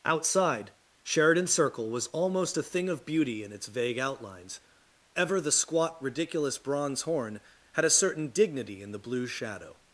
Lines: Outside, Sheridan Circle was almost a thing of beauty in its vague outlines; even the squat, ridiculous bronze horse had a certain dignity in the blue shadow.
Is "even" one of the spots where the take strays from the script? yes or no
yes